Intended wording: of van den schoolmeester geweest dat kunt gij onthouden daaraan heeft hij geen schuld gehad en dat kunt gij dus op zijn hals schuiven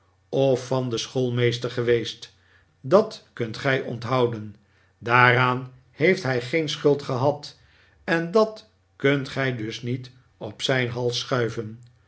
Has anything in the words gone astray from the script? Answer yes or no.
yes